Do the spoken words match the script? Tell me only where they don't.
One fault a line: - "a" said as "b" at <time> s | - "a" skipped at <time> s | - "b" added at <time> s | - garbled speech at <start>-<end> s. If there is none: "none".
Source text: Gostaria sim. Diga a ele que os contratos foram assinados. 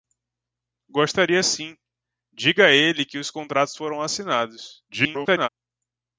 - garbled speech at 4.9-5.5 s